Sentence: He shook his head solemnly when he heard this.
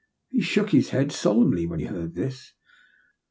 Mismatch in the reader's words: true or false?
false